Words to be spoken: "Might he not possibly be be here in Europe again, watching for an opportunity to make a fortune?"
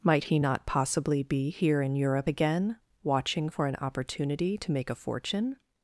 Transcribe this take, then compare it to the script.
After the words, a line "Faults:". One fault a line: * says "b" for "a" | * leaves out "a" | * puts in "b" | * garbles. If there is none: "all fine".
"Might he not possibly be here in Europe again, watching for an opportunity to make a fortune?"
Faults:
* leaves out "be"